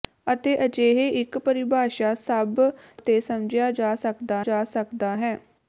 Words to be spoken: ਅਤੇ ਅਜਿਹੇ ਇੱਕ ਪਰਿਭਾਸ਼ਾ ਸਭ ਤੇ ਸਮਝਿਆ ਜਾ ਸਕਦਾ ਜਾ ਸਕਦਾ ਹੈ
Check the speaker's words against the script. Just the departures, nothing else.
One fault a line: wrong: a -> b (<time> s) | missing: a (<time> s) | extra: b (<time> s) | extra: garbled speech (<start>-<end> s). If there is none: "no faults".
no faults